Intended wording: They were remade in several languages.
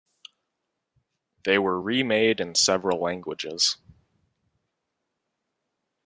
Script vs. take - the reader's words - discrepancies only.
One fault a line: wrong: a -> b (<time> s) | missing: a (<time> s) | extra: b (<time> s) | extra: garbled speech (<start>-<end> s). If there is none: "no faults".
no faults